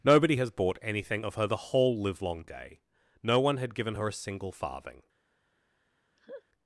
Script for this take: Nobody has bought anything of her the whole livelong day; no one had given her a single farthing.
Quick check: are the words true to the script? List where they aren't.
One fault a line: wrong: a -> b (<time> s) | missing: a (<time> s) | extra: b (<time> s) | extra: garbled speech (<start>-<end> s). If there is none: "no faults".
no faults